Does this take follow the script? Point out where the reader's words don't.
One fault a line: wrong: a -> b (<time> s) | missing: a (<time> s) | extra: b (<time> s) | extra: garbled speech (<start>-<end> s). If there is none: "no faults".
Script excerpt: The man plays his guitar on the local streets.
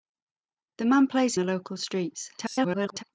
missing: his guitar on (1.4 s)
extra: garbled speech (2.4-3.0 s)